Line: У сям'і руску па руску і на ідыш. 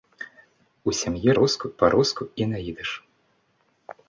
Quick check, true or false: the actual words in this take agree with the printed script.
true